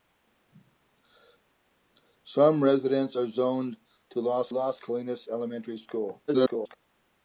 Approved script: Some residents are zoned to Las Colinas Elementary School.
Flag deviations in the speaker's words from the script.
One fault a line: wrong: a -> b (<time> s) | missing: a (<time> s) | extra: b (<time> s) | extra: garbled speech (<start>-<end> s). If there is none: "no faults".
extra: Las (4.5 s)
extra: garbled speech (6.3-6.8 s)